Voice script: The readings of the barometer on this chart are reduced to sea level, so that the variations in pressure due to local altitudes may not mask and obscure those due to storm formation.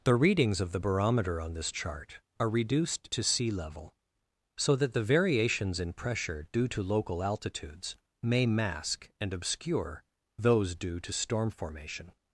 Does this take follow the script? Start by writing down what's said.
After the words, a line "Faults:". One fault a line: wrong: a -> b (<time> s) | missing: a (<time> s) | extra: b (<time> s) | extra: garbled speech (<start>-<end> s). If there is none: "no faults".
The readings of the barometer on this chart are reduced to sea level, so that the variations in pressure due to local altitudes may mask and obscure those due to storm formation.
Faults:
missing: not (8.4 s)